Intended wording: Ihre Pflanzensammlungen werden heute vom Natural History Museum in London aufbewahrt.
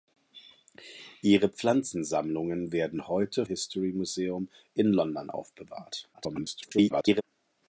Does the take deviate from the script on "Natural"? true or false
true